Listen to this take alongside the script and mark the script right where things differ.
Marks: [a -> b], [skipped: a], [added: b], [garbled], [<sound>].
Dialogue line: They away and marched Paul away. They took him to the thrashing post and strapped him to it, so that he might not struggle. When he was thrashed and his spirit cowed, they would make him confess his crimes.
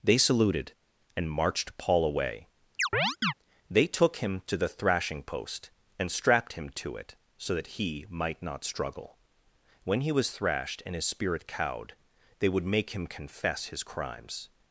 They [away -> saluted] and marched Paul away. [chirp] They took him to the thrashing post and strapped him to it, so that he might not struggle. When he was thrashed and his spirit cowed, they would make him confess his crimes.